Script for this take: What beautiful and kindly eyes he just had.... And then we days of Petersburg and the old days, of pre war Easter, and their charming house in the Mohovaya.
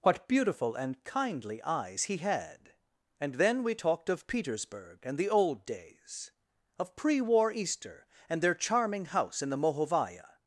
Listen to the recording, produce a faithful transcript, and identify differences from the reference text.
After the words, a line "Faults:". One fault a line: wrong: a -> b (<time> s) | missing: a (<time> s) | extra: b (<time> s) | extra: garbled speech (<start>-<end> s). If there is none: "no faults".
What beautiful and kindly eyes he had.... And then we talked of Petersburg and the old days, of pre war Easter, and their charming house in the Mohovaya.
Faults:
missing: just (2.2 s)
wrong: days -> talked (3.7 s)